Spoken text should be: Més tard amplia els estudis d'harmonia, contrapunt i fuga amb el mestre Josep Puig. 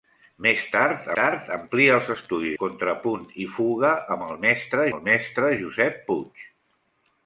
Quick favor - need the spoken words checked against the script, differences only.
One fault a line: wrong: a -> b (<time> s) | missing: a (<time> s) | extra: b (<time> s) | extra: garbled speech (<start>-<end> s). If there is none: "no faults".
extra: tard (1.2 s)
missing: d'harmonia (2.6 s)
extra: el mestre (4.9 s)